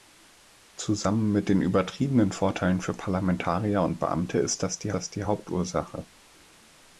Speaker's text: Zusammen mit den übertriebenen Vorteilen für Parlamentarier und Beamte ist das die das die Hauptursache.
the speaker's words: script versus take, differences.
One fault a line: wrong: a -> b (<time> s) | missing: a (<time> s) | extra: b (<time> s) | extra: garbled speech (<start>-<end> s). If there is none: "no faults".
no faults